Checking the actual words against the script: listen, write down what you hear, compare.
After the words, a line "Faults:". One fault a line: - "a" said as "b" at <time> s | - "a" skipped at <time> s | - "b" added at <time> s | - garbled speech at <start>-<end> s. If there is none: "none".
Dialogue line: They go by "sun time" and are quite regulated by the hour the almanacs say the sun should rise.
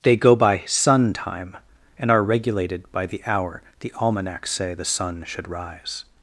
They go by "sun time" and are regulated by the hour the almanacs say the sun should rise.
Faults:
- "quite" skipped at 2.2 s